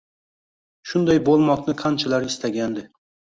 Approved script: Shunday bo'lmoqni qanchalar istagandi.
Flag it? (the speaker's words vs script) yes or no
no